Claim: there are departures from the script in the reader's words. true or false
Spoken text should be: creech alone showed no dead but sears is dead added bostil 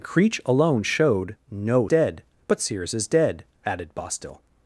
false